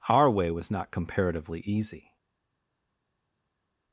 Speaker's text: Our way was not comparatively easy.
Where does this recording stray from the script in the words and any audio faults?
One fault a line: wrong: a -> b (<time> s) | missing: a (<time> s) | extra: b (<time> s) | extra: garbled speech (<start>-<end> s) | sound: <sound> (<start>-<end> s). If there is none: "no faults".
no faults